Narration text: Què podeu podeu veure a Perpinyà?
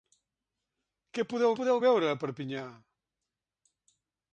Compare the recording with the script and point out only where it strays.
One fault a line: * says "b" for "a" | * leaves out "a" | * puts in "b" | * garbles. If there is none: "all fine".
all fine